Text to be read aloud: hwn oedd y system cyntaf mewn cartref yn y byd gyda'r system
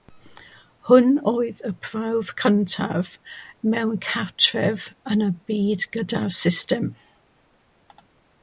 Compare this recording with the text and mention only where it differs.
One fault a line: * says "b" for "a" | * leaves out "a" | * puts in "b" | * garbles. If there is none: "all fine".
* says "prawf" for "system"